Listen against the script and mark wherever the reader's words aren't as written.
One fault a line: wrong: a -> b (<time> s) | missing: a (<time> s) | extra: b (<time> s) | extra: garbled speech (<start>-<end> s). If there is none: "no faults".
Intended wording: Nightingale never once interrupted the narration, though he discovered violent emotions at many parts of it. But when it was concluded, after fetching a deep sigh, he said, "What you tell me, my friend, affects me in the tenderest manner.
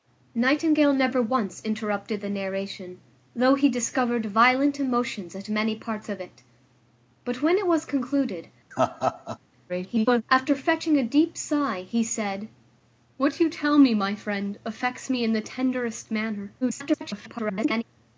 extra: garbled speech (9.7-10.2 s)
extra: garbled speech (16.6-17.8 s)